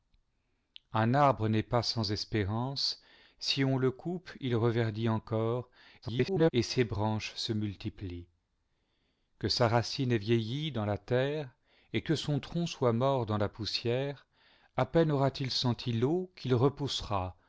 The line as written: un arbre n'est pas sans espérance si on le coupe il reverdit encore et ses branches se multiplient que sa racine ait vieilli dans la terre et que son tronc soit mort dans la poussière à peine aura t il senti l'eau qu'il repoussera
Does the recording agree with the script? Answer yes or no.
no